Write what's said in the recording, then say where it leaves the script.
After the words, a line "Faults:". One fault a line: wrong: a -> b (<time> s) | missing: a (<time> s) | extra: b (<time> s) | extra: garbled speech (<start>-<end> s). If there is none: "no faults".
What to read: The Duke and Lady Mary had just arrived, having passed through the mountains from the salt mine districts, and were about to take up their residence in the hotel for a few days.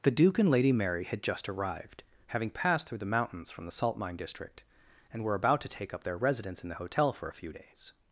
The Duke and Lady Mary had just arrived, having passed through the mountains from the salt mine district, and were about to take up their residence in the hotel for a few days.
Faults:
wrong: districts -> district (4.2 s)